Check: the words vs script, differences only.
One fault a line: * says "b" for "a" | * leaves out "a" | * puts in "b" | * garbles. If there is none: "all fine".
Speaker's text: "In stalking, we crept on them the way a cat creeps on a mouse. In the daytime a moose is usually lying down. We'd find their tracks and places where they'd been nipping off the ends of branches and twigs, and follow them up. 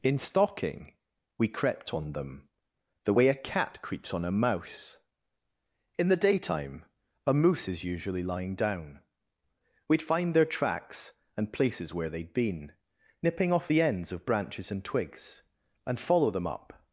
all fine